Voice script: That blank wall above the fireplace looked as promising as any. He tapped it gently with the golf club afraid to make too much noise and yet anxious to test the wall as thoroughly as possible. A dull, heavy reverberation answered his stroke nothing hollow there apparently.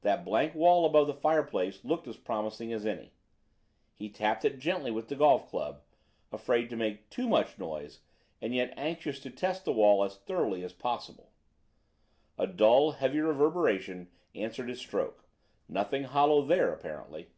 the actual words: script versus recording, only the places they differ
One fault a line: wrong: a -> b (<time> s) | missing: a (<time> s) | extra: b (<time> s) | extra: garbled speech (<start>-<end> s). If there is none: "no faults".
no faults